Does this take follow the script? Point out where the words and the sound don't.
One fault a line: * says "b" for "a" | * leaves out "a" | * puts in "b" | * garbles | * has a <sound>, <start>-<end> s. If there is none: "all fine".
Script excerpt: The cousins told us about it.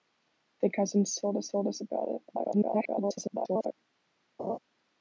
* puts in "told us"
* garbles
* has a laugh, 4.4-4.6 s